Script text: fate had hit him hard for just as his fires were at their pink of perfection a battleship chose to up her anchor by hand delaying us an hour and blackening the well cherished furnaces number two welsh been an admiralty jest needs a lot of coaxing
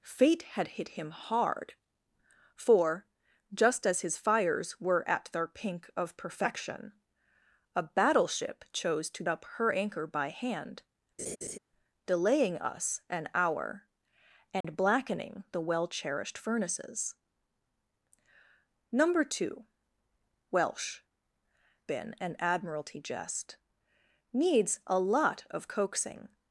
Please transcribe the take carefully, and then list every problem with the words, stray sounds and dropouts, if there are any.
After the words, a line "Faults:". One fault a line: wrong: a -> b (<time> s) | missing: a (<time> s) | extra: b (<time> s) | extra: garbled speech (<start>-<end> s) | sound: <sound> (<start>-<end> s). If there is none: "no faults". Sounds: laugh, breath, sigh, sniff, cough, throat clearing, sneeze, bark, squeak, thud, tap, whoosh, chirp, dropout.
fate had hit him hard for just as his fires were at their pink of perfection a battleship chose to up her anchor by hand delaying us an hour and blackening the well cherished furnaces number two welsh been an admiralty jest needs a lot of coaxing
Faults:
sound: laugh (11.2-11.6 s)
sound: dropout (14.6-14.6 s)